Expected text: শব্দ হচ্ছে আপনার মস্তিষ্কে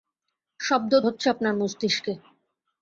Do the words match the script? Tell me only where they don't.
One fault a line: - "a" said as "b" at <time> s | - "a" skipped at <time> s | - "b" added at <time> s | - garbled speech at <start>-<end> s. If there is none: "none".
none